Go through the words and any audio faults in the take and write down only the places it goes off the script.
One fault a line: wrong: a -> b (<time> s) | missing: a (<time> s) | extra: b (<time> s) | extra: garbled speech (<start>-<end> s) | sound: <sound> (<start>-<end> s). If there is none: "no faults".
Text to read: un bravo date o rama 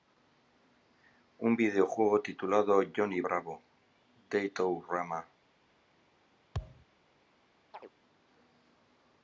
extra: videojuego titulado johnny (1.6 s)
sound: thud (6.5-6.9 s)
sound: chirp (7.7-7.9 s)